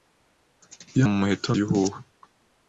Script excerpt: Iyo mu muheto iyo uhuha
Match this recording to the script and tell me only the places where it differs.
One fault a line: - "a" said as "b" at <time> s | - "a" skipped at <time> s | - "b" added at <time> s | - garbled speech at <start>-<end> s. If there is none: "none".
none